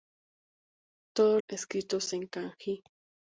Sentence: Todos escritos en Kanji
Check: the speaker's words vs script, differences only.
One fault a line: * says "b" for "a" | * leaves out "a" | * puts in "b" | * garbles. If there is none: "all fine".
all fine